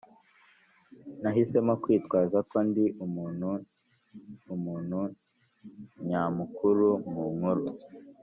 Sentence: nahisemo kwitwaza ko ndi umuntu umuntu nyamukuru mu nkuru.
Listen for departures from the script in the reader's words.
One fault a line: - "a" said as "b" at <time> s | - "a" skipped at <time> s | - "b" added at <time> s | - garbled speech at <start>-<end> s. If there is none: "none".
none